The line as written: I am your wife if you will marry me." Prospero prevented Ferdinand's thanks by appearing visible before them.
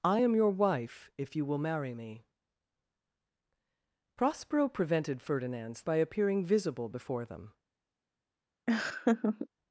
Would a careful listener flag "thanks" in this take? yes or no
yes